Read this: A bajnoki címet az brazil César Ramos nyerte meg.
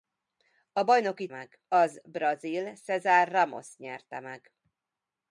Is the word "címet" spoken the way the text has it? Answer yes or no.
no